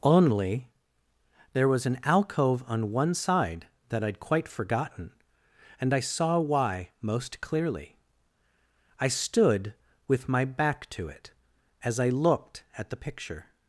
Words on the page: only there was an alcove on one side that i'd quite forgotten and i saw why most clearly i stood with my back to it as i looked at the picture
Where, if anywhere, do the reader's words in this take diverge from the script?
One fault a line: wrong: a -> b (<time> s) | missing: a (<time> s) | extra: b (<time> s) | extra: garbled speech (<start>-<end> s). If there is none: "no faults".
no faults